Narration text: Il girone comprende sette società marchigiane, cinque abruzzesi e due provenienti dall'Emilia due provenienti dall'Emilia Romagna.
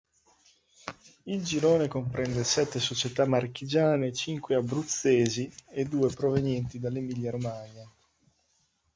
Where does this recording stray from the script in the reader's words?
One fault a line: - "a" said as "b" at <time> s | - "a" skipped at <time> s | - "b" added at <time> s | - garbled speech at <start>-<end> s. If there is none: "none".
- "due provenienti dall'Emilia" skipped at 7.3 s